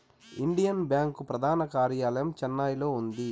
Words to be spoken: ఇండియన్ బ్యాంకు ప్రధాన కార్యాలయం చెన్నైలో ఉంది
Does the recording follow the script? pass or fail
pass